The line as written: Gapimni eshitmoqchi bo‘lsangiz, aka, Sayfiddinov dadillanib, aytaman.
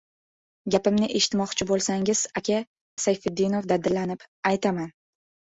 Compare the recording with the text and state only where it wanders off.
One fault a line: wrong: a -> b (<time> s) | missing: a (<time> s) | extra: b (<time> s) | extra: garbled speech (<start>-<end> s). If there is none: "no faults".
no faults